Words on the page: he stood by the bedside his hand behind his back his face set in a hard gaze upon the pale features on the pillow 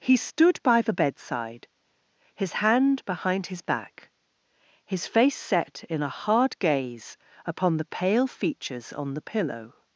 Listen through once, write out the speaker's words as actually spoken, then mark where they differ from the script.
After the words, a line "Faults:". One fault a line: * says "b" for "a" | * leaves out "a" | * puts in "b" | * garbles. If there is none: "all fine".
he stood by the bedside his hand behind his back his face set in a hard gaze upon the pale features on the pillow
Faults:
all fine